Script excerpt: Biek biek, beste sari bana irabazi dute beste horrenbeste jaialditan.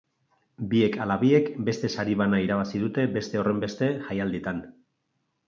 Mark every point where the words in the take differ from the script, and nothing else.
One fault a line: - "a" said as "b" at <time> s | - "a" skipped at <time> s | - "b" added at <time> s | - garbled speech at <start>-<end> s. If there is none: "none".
- "ala" added at 1.0 s